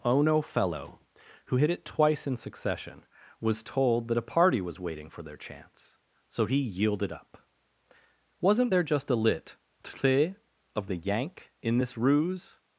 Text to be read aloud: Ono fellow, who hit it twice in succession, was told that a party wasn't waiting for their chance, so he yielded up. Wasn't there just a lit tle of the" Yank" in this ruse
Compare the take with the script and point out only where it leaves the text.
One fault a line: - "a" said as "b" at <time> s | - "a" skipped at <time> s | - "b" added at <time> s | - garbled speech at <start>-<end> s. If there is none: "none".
- "wasn't" said as "was" at 4.6 s